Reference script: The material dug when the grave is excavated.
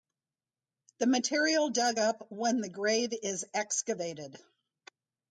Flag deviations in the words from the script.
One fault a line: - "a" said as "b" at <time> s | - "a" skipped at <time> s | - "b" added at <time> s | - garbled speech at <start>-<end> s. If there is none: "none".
- "up" added at 2.0 s